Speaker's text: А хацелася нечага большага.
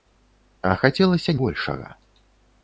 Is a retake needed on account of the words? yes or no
yes